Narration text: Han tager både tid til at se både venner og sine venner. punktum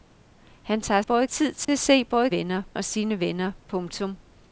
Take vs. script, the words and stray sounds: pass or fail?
fail